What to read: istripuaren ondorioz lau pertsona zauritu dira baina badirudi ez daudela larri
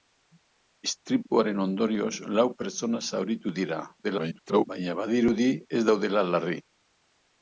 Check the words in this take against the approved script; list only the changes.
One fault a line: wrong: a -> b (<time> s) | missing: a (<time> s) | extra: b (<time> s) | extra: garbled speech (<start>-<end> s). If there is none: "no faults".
extra: garbled speech (4.0-4.6 s)